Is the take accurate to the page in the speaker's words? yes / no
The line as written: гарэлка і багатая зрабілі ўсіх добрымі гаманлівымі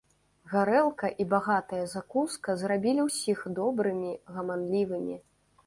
no